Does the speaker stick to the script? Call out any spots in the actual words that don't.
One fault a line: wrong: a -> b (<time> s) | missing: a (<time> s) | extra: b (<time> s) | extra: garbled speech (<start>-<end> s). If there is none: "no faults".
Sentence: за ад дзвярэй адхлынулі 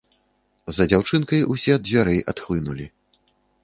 extra: дзяўчынкай усе (0.9 s)